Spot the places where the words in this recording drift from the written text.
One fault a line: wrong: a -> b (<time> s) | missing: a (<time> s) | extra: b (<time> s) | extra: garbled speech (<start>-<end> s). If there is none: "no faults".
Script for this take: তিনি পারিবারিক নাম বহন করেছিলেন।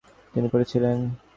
missing: পারিবারিক নাম বহন (0.5 s)